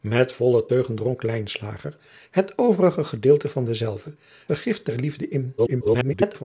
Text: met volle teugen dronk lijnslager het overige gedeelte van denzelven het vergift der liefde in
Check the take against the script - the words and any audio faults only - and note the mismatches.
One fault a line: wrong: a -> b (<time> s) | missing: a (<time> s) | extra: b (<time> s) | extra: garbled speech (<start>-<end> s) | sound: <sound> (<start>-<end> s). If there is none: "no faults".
missing: het (4.2 s)
extra: garbled speech (5.6-6.4 s)